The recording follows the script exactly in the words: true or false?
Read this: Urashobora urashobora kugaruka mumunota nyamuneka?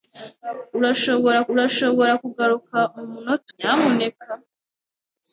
true